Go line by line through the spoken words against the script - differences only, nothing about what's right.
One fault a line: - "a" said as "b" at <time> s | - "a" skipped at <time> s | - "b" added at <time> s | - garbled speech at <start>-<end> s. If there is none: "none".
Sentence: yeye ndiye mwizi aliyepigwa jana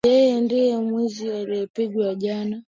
none